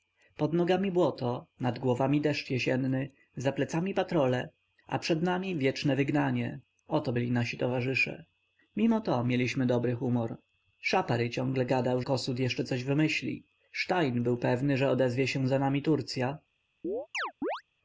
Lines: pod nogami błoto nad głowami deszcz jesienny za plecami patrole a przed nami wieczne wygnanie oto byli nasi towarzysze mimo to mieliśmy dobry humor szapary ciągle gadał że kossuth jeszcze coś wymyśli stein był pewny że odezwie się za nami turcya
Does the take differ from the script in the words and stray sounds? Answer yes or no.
yes